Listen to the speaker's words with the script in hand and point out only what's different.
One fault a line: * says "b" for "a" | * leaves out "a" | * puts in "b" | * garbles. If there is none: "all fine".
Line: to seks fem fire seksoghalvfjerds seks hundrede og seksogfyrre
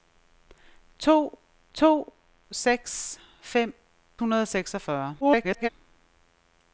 * puts in "to"
* leaves out "fire seksoghalvfjerds seks"
* garbles